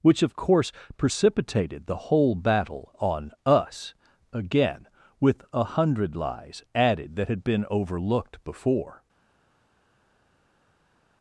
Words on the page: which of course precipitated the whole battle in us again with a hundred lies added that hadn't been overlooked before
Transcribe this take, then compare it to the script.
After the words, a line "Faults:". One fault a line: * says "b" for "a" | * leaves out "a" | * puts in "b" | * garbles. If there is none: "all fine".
which of course precipitated the whole battle on us again with a hundred lies added that had been overlooked before
Faults:
* says "on" for "in"
* says "had" for "hadn't"